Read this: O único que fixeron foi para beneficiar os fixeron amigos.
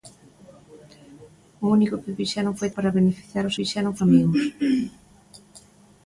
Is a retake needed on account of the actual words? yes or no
no